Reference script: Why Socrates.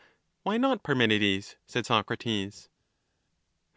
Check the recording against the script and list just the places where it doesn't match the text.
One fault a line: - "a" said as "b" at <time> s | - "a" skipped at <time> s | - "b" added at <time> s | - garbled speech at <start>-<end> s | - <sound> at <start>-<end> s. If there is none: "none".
- "not Parmenides said" added at 0.6 s